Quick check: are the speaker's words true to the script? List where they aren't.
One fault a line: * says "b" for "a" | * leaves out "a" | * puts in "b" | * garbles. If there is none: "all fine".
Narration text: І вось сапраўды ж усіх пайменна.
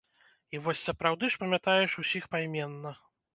* puts in "памятаеш"